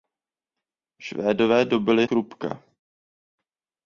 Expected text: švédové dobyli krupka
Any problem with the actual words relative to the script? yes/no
no